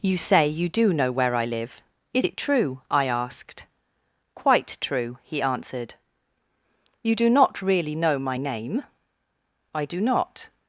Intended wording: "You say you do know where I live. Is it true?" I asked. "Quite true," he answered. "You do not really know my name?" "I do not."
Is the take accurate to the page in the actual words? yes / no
yes